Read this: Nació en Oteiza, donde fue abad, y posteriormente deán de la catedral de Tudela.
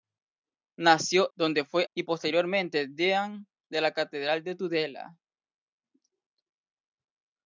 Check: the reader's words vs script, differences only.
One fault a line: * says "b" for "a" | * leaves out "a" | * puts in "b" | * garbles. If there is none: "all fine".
* leaves out "en Oteiza"
* leaves out "abad"